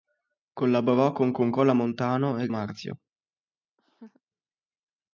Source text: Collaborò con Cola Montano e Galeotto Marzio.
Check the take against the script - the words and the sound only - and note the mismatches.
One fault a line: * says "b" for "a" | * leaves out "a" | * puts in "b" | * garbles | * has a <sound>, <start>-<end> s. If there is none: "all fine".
* puts in "con"
* leaves out "Galeotto"
* has a laugh, 3.8-4.2 s